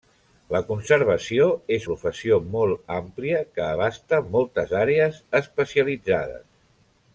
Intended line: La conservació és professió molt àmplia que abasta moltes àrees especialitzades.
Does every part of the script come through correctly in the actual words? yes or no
yes